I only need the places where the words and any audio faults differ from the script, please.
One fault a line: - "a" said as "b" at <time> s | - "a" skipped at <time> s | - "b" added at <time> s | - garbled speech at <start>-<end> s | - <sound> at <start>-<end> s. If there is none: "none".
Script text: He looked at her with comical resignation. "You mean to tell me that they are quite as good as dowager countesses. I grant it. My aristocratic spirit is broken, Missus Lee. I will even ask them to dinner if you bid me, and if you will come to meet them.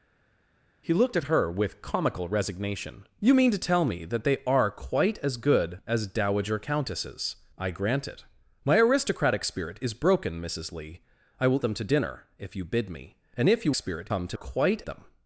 - "even ask" skipped at 11.6 s
- "will" said as "spirit" at 13.7 s
- "meet" said as "quite" at 14.3 s